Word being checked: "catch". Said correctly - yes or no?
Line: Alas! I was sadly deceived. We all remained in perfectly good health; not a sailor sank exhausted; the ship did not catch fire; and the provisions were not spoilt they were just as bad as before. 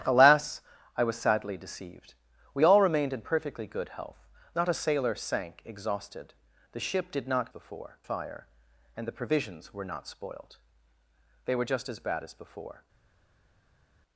no